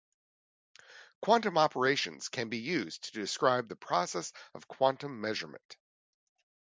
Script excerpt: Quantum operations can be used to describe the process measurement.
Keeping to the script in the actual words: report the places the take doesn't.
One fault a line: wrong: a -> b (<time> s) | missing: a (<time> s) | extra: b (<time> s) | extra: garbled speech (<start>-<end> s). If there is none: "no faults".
extra: of quantum (4.5 s)